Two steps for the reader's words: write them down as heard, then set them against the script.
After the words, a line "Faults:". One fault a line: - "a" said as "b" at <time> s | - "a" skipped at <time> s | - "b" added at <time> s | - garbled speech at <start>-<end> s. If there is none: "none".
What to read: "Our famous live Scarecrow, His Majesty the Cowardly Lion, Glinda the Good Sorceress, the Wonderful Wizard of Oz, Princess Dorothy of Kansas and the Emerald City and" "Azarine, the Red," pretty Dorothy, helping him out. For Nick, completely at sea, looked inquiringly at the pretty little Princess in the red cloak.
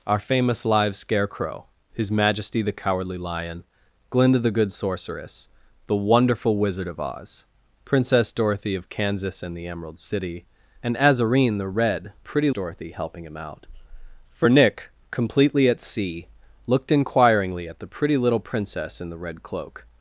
"Our famous live Scarecrow, His Majesty the Cowardly Lion, Glinda the Good Sorceress, the Wonderful Wizard of Oz, Princess Dorothy of Kansas and the Emerald City and" "Azarine, the Red," pretty Dorothy, helping him out. For Nick, completely at sea, looked inquiringly at the pretty little Princess in the red cloak.
Faults:
none